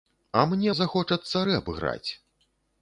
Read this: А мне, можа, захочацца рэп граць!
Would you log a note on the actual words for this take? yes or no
yes